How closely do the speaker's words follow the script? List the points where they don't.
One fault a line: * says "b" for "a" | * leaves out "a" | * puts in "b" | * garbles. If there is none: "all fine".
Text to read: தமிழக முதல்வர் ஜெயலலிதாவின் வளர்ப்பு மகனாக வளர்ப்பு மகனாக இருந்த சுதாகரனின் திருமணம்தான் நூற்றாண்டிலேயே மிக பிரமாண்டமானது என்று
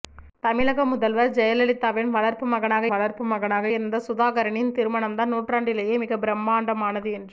all fine